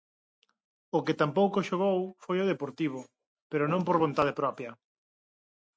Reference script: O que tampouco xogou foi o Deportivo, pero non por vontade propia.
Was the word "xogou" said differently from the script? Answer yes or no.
no